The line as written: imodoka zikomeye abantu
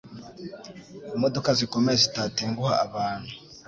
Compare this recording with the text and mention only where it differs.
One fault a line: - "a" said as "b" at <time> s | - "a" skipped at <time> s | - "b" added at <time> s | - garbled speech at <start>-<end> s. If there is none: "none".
- "zitatenguha" added at 2.0 s